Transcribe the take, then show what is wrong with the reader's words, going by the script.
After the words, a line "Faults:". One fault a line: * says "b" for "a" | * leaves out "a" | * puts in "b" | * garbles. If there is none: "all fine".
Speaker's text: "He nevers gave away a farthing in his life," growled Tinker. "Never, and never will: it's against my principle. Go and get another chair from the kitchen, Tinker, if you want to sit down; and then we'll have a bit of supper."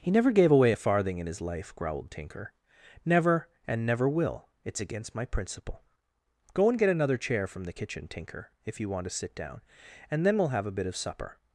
"He never gave away a farthing in his life," growled Tinker. "Never, and never will: it's against my principle. Go and get another chair from the kitchen, Tinker, if you want to sit down; and then we'll have a bit of supper."
Faults:
* says "never" for "nevers"